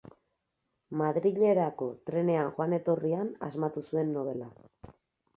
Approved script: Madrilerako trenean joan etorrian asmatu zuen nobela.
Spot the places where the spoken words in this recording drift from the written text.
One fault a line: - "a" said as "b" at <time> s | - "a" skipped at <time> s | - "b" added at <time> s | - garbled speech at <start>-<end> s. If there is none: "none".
none